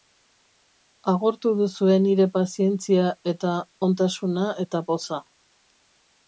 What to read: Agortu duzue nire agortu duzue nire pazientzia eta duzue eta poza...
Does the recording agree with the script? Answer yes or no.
no